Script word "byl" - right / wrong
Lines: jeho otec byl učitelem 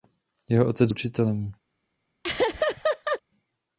wrong